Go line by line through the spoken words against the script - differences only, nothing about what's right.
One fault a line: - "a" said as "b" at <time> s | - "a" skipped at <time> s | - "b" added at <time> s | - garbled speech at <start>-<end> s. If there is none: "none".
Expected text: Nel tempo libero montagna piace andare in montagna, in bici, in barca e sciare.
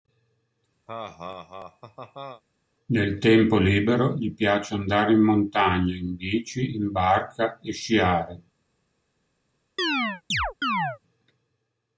- "montagna" said as "gli" at 4.1 s